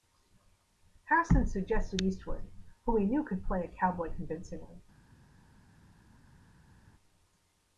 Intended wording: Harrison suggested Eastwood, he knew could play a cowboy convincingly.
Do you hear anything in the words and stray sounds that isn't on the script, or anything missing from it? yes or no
yes